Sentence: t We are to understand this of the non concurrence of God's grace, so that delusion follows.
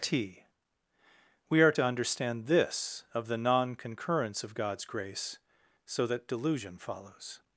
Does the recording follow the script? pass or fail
pass